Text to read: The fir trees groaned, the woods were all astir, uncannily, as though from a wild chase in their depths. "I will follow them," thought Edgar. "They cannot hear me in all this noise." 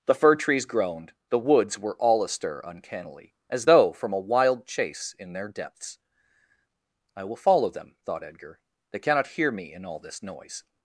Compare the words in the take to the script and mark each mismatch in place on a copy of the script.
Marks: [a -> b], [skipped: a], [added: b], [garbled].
The fir trees groaned, the woods were all astir, uncannily, as though from a wild chase in their depths. "I will follow them," thought Edgar. "They cannot hear me in all this noise."